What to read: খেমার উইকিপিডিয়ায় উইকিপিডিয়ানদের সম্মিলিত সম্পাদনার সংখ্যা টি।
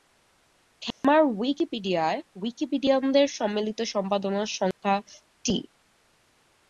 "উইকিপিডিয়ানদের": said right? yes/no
yes